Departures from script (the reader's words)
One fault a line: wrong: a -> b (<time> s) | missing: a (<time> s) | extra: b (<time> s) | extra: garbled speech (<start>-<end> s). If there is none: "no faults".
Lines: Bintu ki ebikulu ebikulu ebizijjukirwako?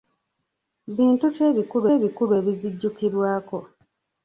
no faults